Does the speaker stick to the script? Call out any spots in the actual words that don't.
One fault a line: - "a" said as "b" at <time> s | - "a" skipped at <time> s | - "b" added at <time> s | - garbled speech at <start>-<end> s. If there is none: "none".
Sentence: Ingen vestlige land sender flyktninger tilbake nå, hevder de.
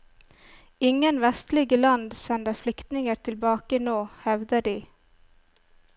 none